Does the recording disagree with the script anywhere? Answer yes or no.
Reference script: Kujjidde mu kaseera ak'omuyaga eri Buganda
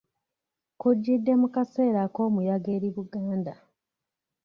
no